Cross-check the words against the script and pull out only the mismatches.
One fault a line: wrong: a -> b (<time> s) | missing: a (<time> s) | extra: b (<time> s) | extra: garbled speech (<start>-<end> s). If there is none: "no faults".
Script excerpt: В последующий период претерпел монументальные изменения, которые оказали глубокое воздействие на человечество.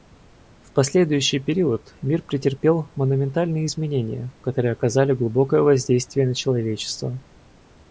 extra: мир (2.0 s)